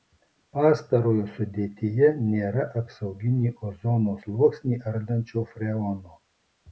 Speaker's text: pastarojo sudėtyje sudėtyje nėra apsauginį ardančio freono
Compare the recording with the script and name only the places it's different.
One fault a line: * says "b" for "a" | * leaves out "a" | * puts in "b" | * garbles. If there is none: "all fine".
* leaves out "sudėtyje"
* puts in "ozono sluoksnį"